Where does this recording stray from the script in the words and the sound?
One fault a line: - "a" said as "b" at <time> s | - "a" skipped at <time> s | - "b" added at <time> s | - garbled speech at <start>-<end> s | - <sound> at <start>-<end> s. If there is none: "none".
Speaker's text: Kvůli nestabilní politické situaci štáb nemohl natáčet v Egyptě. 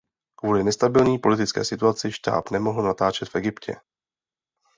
none